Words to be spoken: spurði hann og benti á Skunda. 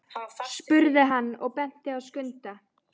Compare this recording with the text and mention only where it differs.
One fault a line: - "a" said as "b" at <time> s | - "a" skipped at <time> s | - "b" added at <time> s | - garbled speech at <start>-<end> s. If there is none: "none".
none